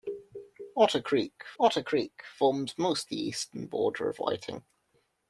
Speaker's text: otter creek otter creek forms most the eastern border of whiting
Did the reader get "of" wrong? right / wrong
right